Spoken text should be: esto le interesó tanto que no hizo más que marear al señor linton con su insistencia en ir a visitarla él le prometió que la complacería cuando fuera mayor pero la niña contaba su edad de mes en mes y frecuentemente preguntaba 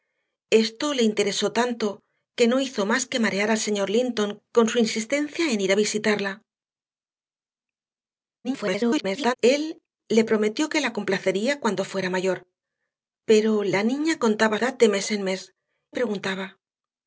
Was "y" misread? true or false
true